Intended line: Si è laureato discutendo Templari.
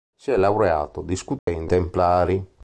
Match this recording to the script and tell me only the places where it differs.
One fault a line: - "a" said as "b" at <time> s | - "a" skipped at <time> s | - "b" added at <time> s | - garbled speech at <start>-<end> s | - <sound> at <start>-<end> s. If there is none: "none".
- dropout at 1.4-1.5 s